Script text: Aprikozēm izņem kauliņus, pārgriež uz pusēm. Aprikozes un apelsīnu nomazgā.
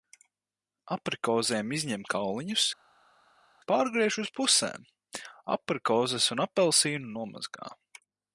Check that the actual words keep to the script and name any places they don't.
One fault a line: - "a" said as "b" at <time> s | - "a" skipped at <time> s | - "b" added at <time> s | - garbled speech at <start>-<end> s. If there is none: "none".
none